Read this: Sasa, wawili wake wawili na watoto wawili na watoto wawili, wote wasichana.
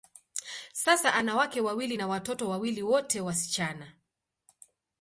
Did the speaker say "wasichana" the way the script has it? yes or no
yes